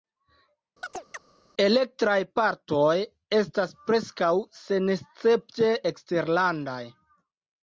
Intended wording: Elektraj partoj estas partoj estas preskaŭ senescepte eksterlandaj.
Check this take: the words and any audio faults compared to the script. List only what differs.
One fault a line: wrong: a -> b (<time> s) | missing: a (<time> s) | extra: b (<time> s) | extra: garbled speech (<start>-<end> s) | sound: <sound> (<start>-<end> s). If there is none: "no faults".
sound: chirp (0.8-1.2 s)
missing: partoj estas (3.7 s)